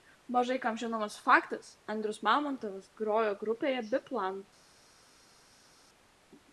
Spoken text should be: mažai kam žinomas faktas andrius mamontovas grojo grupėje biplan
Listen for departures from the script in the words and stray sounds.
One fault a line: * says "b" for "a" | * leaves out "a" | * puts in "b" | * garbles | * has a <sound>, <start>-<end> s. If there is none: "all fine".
all fine